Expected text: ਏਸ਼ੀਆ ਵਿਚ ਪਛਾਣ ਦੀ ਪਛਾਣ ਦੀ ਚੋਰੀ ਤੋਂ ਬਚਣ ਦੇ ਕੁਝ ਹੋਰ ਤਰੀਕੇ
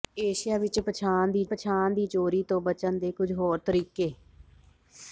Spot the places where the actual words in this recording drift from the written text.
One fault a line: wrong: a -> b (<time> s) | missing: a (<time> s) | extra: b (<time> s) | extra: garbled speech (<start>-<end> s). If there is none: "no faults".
no faults